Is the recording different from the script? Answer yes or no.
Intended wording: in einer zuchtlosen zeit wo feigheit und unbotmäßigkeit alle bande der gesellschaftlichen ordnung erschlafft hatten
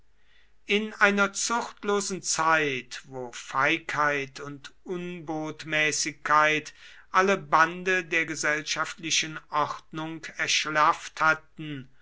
no